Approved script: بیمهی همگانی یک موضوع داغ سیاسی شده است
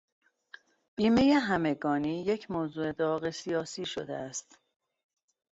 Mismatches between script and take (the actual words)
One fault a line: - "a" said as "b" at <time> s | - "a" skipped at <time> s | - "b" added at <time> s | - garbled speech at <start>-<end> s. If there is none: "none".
none